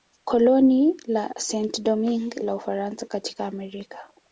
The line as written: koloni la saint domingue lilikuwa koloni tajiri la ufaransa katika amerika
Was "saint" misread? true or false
false